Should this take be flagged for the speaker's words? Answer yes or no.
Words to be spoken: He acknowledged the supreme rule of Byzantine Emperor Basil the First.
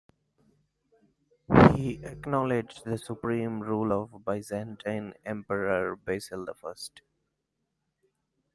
no